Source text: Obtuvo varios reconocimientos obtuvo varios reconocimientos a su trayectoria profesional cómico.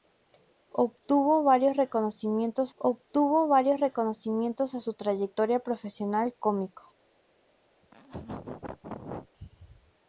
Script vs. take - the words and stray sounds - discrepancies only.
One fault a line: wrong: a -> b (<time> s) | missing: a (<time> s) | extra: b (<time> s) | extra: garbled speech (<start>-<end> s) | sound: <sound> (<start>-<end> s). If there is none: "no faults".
sound: laugh (7.8-9.3 s)